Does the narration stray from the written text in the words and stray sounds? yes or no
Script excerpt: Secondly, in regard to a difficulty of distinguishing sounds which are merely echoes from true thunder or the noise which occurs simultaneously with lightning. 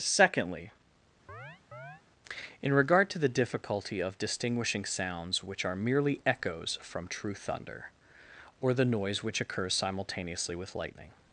yes